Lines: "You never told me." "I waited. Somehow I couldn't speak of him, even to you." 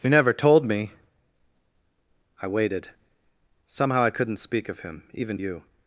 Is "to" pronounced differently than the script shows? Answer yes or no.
yes